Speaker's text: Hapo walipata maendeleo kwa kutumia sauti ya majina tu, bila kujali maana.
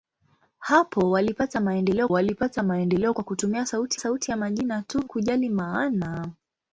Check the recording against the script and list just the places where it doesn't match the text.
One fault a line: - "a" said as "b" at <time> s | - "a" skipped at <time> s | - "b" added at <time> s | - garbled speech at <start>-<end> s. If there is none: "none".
- "walipata maendeleo" added at 2.1 s
- "sauti" added at 4.0 s
- "bila" skipped at 5.0 s